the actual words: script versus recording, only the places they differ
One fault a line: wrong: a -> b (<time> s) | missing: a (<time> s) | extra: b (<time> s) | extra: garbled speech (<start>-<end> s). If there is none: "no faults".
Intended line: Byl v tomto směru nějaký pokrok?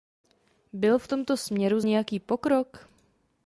no faults